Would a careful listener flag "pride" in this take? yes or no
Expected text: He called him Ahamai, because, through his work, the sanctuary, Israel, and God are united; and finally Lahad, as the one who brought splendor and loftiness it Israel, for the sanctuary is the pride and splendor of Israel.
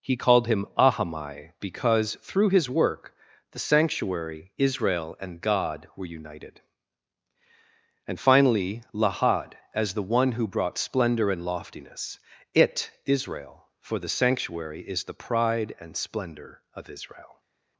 no